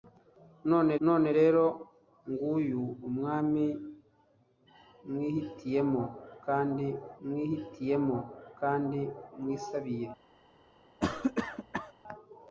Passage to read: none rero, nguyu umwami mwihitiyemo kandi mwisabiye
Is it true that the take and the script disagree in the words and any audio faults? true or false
true